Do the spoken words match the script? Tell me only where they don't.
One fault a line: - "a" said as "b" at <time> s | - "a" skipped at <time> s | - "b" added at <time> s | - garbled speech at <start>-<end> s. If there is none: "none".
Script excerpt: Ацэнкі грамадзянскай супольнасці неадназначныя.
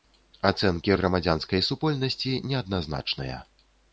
none